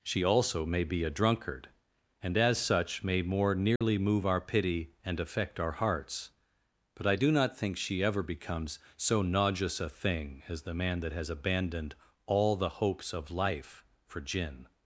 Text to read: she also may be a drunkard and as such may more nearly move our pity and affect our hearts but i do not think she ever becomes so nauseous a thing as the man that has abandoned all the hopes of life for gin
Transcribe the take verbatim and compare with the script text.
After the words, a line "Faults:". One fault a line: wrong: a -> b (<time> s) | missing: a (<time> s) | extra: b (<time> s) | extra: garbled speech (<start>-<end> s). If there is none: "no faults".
she also may be a drunkard and as such may more nearly move our pity and affect our hearts but i do not think she ever becomes so nauseous a thing as the man that has abandoned all the hopes of life for gin
Faults:
no faults